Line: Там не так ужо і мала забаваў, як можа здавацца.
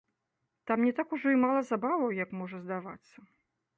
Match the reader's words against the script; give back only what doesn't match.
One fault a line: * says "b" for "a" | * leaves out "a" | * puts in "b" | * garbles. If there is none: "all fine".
all fine